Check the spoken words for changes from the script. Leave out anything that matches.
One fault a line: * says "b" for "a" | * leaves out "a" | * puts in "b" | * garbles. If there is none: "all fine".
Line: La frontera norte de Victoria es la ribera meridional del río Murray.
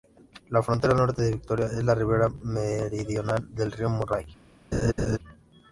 all fine